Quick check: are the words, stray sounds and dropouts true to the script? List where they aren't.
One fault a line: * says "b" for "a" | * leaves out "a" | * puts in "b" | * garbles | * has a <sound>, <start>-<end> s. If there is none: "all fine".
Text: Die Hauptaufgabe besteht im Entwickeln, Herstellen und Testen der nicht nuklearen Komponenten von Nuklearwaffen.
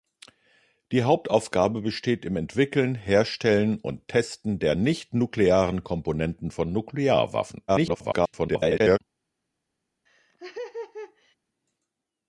* garbles
* has a laugh, 10.1-11.4 s